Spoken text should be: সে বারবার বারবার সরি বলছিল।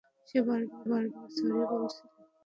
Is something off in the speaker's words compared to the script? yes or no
no